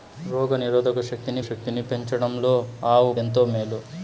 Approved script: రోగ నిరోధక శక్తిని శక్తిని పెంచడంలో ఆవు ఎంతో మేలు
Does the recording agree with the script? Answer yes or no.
yes